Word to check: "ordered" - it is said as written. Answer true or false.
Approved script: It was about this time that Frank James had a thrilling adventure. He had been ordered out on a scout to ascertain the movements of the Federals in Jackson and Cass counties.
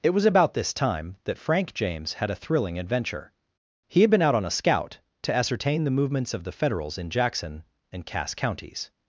false